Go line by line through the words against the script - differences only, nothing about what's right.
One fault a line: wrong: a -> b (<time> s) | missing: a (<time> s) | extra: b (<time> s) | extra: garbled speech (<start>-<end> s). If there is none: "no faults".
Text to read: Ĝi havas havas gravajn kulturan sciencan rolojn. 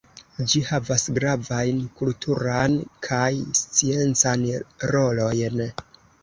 missing: havas (1.0 s)
extra: kaj (3.1 s)